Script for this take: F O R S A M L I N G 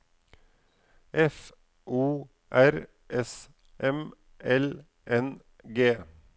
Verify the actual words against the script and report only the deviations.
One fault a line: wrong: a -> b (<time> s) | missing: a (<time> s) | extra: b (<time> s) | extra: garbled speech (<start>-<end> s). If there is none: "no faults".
missing: A (3.5 s)
missing: I (4.8 s)